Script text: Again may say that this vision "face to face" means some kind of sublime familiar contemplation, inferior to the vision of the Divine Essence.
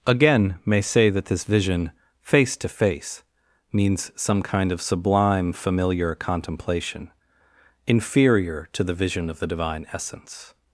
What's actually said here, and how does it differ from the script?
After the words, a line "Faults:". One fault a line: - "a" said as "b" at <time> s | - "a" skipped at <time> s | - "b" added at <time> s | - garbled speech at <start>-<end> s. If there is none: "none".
Again may say that this vision "face to face" means some kind of sublime familiar contemplation, inferior to the vision of the Divine Essence.
Faults:
none